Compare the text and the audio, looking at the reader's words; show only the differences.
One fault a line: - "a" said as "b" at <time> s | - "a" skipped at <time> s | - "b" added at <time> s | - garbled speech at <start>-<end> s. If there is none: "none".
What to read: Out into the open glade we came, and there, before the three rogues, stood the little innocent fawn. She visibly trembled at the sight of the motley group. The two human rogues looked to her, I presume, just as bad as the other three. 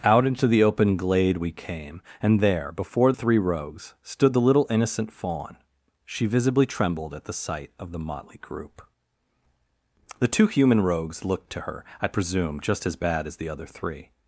- "the" skipped at 3.1 s